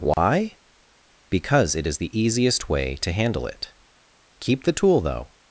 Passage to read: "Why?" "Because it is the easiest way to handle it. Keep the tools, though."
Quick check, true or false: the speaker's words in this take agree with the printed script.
false